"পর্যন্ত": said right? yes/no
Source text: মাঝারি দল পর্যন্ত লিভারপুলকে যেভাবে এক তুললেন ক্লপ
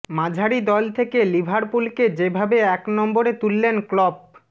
no